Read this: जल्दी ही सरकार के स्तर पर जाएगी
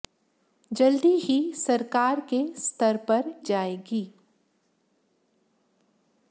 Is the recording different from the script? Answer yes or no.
no